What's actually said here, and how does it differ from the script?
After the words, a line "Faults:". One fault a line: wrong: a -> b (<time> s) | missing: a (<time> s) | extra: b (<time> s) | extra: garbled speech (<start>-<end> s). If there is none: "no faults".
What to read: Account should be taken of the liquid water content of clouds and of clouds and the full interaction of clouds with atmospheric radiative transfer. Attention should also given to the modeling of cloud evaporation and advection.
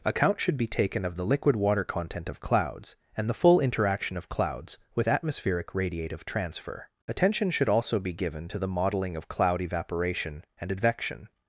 Account should be taken of the liquid water content of clouds and the full interaction of clouds with atmospheric radiative transfer. Attention should also be given to the modeling of cloud evaporation and advection.
Faults:
missing: of clouds and (3.3 s)
extra: be (8.0 s)